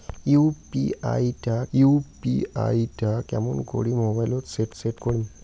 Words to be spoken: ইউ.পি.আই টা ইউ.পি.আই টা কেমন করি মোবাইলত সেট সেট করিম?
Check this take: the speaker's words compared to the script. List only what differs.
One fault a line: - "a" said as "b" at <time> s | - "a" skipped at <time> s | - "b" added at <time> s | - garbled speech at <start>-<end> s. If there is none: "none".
none